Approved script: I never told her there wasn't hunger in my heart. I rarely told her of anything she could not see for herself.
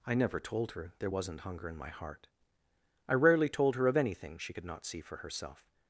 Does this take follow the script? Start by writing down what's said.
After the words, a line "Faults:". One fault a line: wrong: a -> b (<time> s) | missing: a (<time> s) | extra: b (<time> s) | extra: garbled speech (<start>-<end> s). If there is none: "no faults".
I never told her there wasn't hunger in my heart. I rarely told her of anything she could not see for herself.
Faults:
no faults